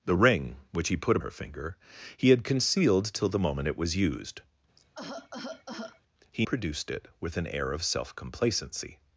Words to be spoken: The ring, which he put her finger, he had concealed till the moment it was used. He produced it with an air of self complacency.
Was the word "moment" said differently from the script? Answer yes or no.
no